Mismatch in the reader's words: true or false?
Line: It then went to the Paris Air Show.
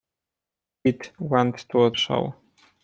true